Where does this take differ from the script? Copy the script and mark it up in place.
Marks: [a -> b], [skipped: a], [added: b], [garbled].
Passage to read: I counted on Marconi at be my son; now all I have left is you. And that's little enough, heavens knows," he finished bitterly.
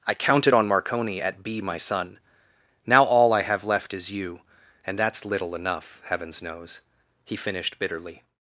I counted on Marconi at be my son; now all I have left is you. And that's little enough, heavens knows," he finished bitterly.